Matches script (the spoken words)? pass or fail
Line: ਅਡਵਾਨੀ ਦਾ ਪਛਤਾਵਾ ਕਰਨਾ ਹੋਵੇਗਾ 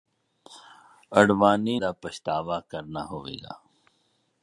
pass